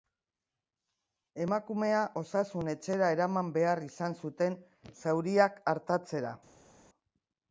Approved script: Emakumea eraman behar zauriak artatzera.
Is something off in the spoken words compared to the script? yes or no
yes